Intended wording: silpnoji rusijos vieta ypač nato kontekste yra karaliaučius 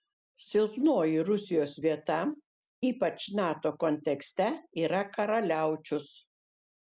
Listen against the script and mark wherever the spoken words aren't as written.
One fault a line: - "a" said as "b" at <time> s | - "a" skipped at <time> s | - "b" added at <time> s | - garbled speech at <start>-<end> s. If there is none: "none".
none